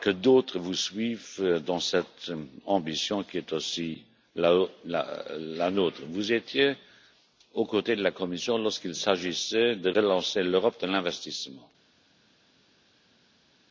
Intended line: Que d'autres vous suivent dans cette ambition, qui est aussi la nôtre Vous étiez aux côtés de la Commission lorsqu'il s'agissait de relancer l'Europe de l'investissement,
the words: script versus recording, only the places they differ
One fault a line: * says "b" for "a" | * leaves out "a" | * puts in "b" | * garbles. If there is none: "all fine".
all fine